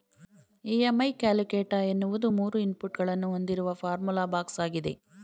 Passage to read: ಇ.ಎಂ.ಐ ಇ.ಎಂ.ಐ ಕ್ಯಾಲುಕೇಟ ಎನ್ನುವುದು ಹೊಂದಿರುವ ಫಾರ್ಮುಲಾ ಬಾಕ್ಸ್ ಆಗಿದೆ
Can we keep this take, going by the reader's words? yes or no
no